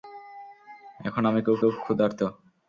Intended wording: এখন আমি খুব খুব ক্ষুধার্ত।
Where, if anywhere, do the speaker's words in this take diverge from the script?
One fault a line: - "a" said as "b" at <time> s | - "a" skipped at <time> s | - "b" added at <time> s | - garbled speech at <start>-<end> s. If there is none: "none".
none